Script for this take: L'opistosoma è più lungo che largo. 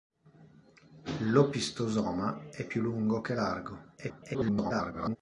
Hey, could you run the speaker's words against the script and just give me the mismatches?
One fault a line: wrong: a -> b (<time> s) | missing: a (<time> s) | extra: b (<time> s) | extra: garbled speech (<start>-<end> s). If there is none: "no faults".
extra: garbled speech (4.0-5.2 s)